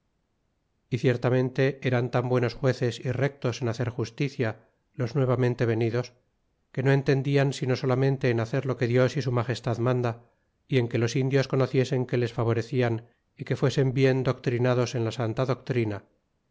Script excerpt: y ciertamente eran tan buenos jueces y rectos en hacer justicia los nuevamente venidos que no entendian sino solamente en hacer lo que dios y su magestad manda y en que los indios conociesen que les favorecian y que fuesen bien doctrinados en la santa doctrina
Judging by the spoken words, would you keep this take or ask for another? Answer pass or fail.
pass